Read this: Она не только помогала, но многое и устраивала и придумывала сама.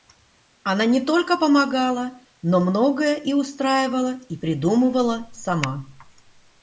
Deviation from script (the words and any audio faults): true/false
false